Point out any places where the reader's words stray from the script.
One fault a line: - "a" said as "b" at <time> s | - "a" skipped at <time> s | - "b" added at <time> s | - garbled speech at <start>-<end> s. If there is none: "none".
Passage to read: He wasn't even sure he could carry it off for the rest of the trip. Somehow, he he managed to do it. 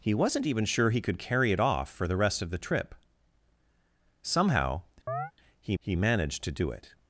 none